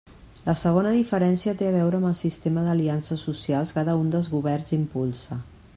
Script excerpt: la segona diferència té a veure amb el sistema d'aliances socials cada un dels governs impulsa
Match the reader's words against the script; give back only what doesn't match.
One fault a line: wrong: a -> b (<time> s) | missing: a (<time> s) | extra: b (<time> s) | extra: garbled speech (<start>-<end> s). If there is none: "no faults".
no faults